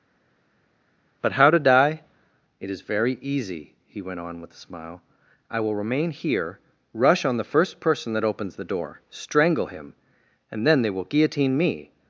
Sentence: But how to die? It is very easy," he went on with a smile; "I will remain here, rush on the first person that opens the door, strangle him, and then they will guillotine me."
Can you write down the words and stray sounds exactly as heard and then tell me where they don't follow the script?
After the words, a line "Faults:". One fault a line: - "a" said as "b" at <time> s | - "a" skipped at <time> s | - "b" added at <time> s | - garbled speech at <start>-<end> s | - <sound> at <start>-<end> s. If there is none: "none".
But how to die? It is very easy," he went on with a smile; "I will remain here, rush on the first person that opens the door, strangle him, and then they will guillotine me."
Faults:
none